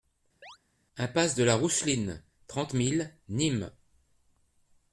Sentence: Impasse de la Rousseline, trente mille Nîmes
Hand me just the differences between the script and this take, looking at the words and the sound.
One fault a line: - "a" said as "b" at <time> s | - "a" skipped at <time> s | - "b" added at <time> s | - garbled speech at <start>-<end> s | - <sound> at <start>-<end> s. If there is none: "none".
- chirp at 0.4-0.6 s